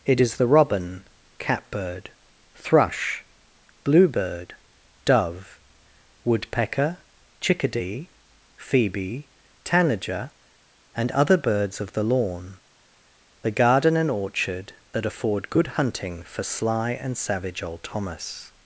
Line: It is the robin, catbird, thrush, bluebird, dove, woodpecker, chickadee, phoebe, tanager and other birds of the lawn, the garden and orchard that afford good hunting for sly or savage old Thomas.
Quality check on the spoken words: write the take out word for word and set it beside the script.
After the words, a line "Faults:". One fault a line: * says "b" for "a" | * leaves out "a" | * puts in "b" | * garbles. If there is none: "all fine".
It is the robin, catbird, thrush, bluebird, dove, woodpecker, chickadee, phoebe, tanager and other birds of the lawn, the garden and orchard that afford good hunting for sly and savage old Thomas.
Faults:
* says "and" for "or"